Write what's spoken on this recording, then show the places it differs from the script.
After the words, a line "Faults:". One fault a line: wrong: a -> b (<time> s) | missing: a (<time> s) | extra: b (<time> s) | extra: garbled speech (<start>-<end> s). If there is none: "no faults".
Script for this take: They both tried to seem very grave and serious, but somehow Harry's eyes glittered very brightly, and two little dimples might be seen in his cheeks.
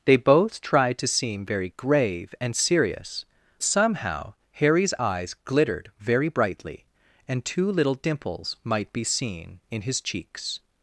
They both tried to seem very grave and serious, somehow Harry's eyes glittered very brightly, and two little dimples might be seen in his cheeks.
Faults:
missing: but (3.2 s)